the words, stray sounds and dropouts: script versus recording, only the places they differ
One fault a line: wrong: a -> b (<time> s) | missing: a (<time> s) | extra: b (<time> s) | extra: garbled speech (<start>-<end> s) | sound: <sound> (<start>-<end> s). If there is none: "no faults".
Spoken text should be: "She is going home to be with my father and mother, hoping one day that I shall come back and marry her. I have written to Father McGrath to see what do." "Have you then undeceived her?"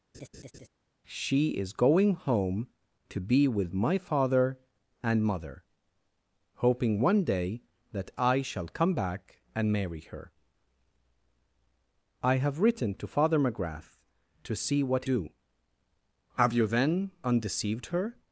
sound: laugh (0.1-0.7 s)